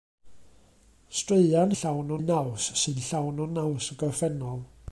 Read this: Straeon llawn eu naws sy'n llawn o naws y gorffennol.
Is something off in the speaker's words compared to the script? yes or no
no